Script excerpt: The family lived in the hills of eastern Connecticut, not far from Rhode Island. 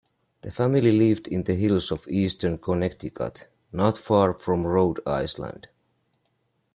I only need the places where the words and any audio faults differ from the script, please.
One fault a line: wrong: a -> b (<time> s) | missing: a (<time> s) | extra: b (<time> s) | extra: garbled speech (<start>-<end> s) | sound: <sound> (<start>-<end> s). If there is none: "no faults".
no faults